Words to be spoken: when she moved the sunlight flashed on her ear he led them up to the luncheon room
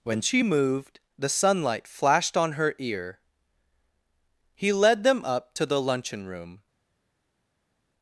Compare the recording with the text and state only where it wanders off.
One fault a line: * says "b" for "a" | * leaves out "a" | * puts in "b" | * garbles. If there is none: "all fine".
all fine